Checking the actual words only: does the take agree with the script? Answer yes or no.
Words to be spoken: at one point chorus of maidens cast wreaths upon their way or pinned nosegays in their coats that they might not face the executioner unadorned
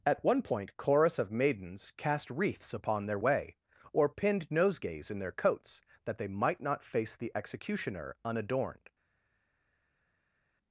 yes